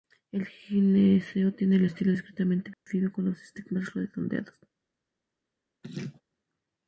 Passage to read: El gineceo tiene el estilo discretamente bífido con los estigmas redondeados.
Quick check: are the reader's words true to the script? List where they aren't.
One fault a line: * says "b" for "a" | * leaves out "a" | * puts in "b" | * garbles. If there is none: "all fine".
all fine